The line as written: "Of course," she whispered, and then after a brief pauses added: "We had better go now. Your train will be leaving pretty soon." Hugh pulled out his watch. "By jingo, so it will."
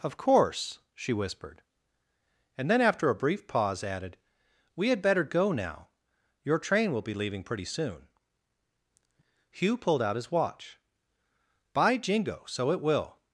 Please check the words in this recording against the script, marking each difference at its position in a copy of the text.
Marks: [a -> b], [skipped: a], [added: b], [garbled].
"Of course," she whispered, and then after a brief [pauses -> pause] added: "We had better go now. Your train will be leaving pretty soon." Hugh pulled out his watch. "By jingo, so it will."